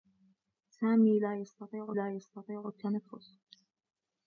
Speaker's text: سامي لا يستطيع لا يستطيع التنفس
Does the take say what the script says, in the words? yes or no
yes